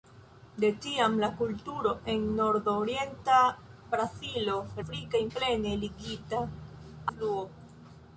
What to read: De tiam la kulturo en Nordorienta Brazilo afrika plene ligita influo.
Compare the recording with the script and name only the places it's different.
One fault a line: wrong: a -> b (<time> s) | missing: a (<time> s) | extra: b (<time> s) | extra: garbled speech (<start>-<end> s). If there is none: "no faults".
no faults